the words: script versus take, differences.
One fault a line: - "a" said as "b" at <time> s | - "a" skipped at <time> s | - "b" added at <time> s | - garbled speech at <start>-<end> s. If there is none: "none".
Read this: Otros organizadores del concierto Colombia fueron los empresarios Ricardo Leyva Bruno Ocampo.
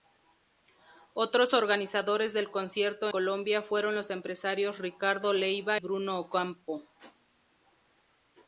none